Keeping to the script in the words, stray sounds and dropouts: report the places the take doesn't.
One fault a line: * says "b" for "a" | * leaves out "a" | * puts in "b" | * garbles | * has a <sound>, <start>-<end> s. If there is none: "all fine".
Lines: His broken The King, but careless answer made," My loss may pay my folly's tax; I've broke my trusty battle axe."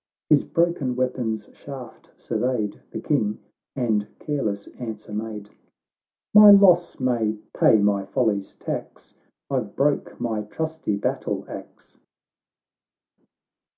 * puts in "weapon's shaft surveyed"
* says "and" for "but"